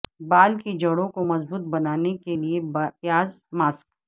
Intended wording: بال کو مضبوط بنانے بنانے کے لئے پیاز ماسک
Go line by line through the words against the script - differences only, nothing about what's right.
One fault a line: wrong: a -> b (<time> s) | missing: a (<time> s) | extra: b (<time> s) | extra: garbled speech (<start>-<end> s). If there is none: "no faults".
extra: کی جڑوں (0.6 s)
missing: بنانے (2.1 s)